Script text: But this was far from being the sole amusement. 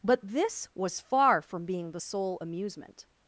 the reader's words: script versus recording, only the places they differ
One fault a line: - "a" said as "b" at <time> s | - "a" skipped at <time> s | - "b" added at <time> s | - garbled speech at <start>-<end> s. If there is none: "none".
none